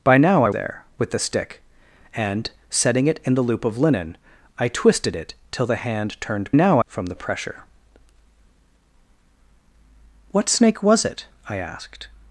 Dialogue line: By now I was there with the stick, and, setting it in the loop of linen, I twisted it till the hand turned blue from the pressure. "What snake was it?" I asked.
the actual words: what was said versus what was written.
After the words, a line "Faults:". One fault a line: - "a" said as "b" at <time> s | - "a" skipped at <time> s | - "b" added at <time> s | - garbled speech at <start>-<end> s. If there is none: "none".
By now I there with the stick, and, setting it in the loop of linen, I twisted it till the hand turned now from the pressure. "What snake was it?" I asked.
Faults:
- "was" skipped at 0.5 s
- "blue" said as "now" at 6.5 s